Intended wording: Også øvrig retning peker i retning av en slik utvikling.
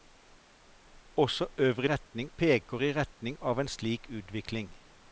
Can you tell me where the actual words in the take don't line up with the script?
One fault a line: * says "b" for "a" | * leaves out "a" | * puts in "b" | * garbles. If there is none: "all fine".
all fine